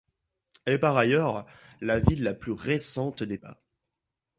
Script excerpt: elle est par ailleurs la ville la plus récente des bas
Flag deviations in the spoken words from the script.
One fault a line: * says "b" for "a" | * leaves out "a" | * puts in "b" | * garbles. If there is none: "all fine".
all fine